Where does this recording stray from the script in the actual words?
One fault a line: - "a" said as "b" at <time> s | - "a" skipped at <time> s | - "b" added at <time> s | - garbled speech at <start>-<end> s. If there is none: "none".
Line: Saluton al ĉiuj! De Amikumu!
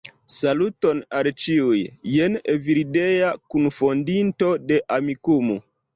- "Jen Evildea kunfondinto" added at 2.1 s